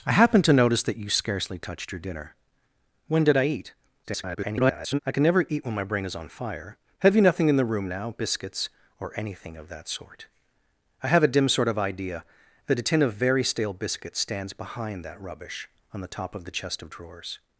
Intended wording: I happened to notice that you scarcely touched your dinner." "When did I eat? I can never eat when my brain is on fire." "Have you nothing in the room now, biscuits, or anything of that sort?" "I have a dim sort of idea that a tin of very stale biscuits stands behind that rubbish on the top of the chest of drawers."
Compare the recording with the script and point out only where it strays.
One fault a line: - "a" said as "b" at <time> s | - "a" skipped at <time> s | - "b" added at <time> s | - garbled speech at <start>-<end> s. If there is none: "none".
- garbled speech at 4.0-5.0 s